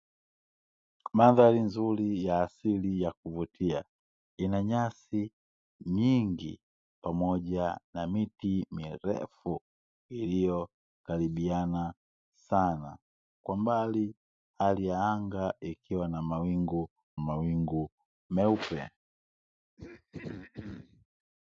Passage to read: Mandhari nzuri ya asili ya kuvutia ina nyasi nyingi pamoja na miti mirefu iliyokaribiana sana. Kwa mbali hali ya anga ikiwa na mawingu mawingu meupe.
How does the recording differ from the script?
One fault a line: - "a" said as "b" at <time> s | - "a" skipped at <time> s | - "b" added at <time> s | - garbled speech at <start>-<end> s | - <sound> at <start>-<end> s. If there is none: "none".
- throat clearing at 19.8-21.1 s